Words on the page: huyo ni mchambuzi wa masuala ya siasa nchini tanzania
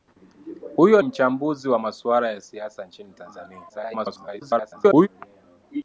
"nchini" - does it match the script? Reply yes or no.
yes